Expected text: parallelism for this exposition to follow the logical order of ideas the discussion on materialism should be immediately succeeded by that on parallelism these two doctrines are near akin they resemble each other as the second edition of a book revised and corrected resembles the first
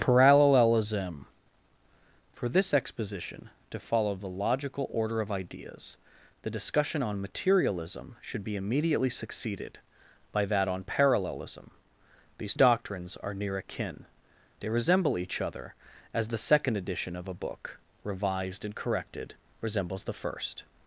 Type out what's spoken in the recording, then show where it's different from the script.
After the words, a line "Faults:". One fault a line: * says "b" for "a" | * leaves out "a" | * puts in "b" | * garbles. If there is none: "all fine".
parallelism for this exposition to follow the logical order of ideas the discussion on materialism should be immediately succeeded by that on parallelism these doctrines are near akin they resemble each other as the second edition of a book revised and corrected resembles the first
Faults:
* leaves out "two"